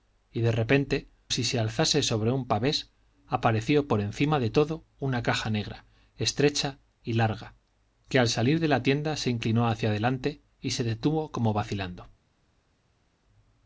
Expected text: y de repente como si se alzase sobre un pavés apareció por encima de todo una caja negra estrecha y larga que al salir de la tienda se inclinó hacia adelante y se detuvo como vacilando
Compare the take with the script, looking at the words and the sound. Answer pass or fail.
fail